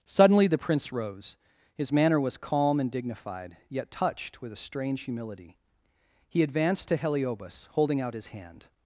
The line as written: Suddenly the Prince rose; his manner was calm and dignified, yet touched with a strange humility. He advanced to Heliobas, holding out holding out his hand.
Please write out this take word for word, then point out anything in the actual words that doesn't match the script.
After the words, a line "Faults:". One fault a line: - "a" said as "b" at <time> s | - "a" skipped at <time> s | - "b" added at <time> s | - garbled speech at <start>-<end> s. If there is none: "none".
Suddenly the Prince rose; his manner was calm and dignified, yet touched with a strange humility. He advanced to Heliobas, holding out his hand.
Faults:
- "holding out" skipped at 8.1 s